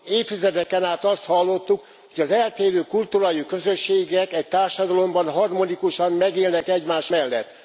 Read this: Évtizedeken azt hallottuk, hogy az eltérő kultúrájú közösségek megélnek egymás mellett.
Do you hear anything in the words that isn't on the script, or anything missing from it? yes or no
yes